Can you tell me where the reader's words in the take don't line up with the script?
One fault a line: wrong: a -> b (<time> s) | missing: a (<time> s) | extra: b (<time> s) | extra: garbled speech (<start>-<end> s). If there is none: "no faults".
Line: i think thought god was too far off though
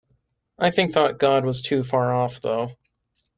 no faults